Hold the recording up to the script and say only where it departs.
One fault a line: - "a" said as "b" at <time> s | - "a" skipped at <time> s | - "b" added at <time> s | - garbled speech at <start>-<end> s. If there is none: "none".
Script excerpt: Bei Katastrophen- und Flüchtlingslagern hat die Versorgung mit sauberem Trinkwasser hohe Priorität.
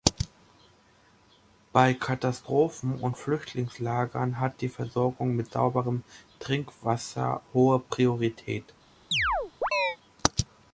none